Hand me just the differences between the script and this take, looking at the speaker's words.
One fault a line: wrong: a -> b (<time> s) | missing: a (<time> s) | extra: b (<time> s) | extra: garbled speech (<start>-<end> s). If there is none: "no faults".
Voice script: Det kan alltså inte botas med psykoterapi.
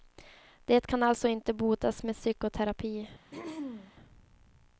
no faults